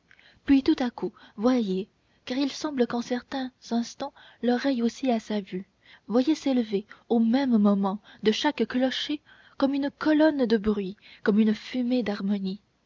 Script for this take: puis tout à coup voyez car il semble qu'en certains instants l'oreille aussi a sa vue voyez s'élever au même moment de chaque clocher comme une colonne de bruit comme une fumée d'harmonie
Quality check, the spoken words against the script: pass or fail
pass